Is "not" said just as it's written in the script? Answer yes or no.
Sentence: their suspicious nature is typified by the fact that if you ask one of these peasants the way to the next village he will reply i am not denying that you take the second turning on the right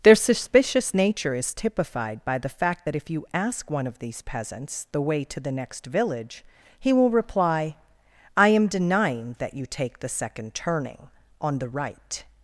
no